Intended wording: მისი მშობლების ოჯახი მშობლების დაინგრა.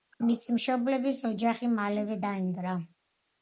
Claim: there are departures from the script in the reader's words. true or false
true